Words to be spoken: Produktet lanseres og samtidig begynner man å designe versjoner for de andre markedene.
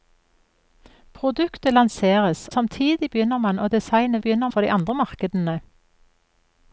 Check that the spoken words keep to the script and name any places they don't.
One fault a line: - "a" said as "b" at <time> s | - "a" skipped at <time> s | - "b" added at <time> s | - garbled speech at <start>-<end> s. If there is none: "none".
- "og" skipped at 2.5 s
- "versjoner" said as "begynner" at 4.2 s